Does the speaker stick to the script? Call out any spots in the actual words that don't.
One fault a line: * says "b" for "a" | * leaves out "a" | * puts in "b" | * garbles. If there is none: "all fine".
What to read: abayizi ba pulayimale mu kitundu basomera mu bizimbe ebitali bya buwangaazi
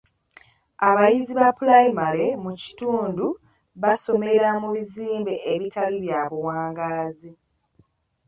all fine